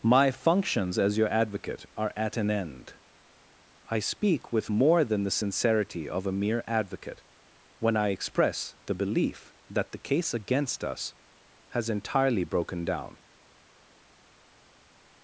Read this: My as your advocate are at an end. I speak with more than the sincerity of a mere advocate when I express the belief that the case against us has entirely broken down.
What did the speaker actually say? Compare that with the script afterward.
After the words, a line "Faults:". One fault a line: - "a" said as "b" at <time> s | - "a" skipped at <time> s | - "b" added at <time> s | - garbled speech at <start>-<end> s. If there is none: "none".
My functions as your advocate are at an end. I speak with more than the sincerity of a mere advocate when I express the belief that the case against us has entirely broken down.
Faults:
- "functions" added at 0.3 s